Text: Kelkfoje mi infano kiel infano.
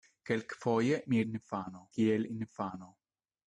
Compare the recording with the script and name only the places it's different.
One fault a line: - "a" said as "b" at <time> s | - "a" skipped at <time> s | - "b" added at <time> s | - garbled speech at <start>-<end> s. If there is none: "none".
none